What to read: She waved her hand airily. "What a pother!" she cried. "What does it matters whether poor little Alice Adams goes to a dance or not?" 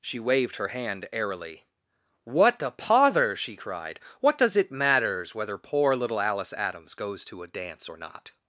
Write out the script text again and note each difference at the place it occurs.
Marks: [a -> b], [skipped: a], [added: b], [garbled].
She waved her hand airily. "What a pother!" she cried. "What does it matters whether poor little Alice Adams goes to a dance or not?"